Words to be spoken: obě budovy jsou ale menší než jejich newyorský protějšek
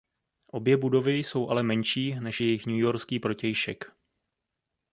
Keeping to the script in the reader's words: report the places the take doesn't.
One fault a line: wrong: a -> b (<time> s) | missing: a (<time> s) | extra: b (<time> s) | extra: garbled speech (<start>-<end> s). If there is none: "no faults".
no faults